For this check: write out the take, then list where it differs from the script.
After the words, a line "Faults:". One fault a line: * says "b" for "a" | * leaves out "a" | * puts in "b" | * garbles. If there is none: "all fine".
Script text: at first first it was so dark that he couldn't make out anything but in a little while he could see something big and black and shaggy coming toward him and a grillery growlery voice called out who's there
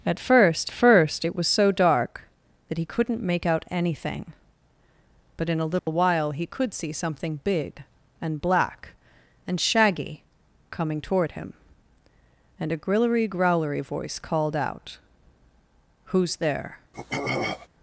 at first first it was so dark that he couldn't make out anything but in a little while he could see something big and black and shaggy coming toward him and a grillery growlery voice called out who's there
Faults:
all fine